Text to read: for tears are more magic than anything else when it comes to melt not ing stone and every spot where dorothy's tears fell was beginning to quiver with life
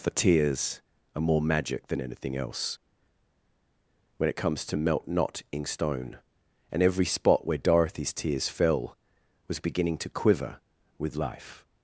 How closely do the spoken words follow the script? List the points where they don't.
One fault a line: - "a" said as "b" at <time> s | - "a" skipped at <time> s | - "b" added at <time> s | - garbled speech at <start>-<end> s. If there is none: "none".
none